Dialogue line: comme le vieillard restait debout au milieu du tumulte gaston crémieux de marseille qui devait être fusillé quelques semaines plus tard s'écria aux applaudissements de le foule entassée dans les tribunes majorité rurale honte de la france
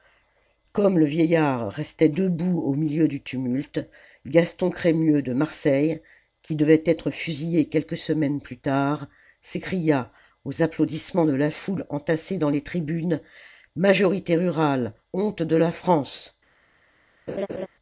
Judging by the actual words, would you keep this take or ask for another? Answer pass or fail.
fail